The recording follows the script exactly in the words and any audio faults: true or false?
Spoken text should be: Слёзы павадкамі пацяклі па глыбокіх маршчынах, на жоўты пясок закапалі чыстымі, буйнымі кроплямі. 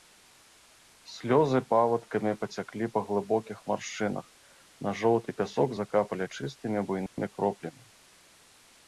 false